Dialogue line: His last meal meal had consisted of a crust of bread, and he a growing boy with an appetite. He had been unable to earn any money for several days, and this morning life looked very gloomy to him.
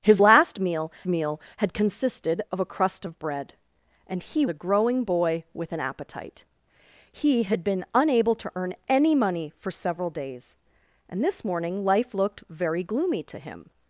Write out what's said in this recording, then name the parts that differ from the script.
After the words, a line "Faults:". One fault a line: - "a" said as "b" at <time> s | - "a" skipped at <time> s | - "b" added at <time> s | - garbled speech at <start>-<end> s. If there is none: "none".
His last meal meal had consisted of a crust of bread, and he a growing boy with an appetite. He had been unable to earn any money for several days, and this morning life looked very gloomy to him.
Faults:
none